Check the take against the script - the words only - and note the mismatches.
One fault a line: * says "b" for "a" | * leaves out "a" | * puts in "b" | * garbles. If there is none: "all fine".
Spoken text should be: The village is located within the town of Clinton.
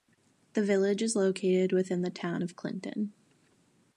all fine